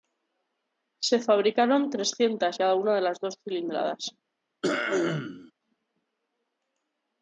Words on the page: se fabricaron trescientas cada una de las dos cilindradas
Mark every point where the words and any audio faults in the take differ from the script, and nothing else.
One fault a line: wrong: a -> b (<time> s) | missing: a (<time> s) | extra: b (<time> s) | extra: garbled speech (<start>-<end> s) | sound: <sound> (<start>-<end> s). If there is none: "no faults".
sound: throat clearing (4.6-5.5 s)